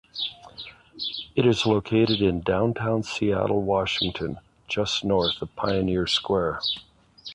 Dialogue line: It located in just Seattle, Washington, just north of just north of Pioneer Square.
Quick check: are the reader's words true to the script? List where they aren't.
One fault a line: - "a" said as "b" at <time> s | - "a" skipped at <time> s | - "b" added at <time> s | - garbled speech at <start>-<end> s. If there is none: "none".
- "is" added at 1.4 s
- "just" said as "downtown" at 2.4 s
- "just north of" skipped at 5.5 s